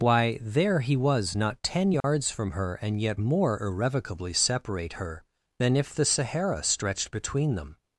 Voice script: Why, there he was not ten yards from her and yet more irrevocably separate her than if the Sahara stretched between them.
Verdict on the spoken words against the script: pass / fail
pass